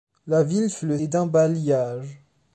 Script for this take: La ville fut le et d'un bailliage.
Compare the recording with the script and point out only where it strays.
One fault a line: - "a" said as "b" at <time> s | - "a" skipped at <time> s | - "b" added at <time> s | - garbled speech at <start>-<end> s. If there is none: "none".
none